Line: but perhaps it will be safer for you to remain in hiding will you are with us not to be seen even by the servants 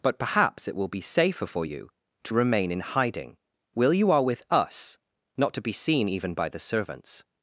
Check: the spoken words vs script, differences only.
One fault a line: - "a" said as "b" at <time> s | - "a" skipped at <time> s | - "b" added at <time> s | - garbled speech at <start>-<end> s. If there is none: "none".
none